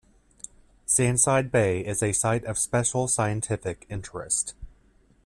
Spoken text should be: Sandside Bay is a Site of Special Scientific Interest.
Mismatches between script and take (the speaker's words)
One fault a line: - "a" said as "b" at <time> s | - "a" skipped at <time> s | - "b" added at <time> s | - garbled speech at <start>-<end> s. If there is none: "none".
none